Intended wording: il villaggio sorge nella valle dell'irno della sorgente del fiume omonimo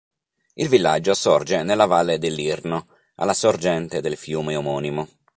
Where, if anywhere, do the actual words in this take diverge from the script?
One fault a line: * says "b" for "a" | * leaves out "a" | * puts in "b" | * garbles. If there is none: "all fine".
* says "alla" for "della"